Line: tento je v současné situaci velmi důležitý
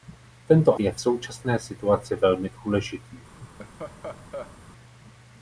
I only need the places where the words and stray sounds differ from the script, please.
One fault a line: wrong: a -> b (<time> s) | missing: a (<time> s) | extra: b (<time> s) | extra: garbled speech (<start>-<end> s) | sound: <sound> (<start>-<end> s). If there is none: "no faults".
sound: laugh (3.4-4.6 s)